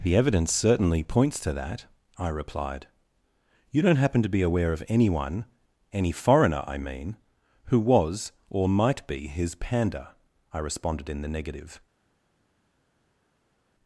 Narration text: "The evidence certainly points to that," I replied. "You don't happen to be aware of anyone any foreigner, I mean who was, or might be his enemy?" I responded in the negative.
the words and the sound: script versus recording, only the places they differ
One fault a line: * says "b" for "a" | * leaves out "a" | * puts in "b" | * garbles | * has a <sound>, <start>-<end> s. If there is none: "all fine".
* says "panda" for "enemy"